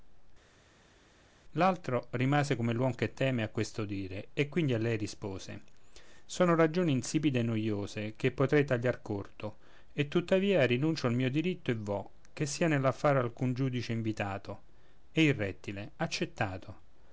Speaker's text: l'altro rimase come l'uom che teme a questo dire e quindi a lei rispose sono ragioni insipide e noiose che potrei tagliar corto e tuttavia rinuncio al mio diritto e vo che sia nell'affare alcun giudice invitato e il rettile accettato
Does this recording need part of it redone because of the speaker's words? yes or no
no